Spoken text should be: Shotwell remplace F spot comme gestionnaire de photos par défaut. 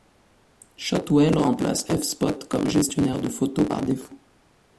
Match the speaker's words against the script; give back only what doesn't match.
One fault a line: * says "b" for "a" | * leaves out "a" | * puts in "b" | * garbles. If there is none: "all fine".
all fine